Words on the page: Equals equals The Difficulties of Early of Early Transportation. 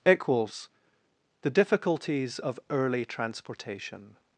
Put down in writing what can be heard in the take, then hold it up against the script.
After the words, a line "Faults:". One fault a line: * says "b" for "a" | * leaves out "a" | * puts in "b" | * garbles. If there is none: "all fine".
Equals The Difficulties of Early Transportation.
Faults:
* leaves out "equals"
* leaves out "of Early"